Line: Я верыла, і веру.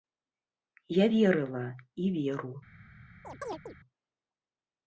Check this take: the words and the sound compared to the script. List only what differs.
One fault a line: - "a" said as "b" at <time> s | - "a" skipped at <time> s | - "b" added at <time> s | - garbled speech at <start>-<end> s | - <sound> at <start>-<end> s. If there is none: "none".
- chirp at 3.2-3.7 s